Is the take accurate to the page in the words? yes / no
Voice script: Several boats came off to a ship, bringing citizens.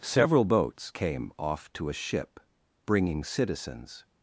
yes